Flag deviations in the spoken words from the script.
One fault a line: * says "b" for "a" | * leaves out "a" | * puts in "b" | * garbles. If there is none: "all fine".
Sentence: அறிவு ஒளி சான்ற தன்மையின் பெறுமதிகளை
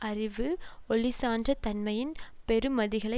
all fine